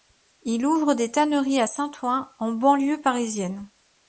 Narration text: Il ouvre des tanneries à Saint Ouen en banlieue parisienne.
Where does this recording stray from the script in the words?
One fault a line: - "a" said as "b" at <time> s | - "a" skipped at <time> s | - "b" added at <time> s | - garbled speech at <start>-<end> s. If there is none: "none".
none